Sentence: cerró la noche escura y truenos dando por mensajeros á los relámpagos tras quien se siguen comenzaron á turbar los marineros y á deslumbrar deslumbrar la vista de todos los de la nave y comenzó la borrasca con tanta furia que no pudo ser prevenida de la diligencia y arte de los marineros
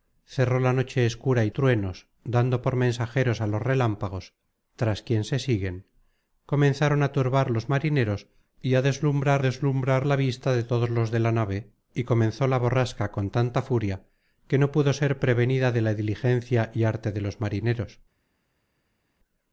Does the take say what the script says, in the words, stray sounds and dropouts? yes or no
yes